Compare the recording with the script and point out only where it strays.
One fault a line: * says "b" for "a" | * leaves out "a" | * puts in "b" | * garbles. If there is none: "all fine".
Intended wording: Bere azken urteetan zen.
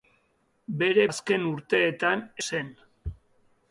all fine